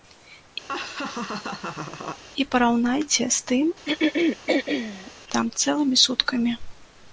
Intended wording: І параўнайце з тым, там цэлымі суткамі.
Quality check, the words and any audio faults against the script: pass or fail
fail